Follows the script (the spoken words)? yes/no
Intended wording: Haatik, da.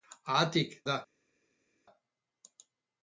yes